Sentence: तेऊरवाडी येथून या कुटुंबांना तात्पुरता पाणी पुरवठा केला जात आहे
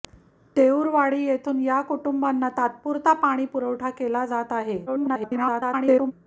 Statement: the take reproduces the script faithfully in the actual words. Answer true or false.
false